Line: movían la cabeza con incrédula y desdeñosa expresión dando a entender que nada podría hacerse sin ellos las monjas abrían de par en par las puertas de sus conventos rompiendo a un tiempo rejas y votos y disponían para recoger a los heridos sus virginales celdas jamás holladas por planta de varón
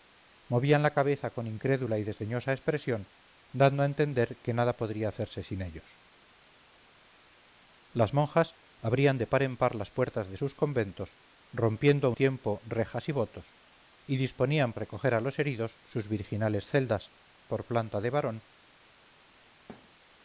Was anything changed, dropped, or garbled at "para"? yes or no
yes